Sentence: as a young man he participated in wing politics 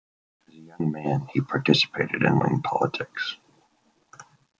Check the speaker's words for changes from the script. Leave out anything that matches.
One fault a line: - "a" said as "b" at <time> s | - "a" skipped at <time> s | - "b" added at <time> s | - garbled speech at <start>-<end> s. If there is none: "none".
none